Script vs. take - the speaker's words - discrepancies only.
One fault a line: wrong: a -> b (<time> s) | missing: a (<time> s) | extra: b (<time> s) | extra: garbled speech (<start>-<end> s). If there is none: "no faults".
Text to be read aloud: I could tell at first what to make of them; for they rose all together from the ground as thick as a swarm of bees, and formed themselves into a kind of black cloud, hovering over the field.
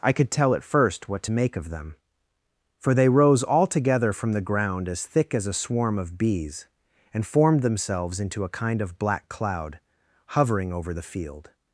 no faults